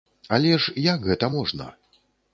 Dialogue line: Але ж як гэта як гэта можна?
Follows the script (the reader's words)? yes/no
no